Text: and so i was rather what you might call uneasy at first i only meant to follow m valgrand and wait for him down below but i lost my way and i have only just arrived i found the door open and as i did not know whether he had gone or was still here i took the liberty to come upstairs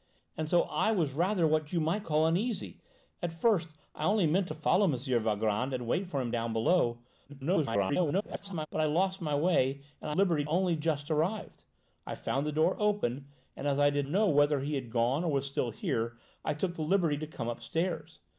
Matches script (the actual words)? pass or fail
fail